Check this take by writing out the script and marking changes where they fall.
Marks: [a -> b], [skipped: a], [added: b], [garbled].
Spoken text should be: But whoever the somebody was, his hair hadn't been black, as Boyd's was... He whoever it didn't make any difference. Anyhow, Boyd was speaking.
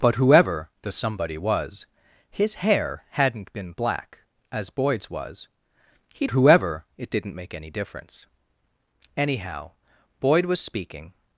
But whoever the somebody was, his hair hadn't been black, as Boyd's was... He whoever it didn't make any difference. Anyhow, Boyd was speaking.